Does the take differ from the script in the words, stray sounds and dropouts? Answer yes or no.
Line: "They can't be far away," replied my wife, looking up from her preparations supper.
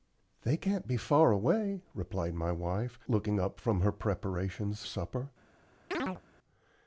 yes